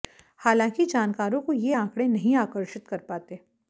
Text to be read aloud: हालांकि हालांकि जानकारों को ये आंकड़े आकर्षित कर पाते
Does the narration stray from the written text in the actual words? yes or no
yes